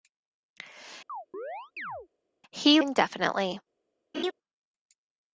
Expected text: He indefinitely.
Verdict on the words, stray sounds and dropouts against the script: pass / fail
fail